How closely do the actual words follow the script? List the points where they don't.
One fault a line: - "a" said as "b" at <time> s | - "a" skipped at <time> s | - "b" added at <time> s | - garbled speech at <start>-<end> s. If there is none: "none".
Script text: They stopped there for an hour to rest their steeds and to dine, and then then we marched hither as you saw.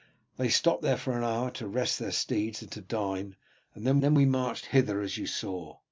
none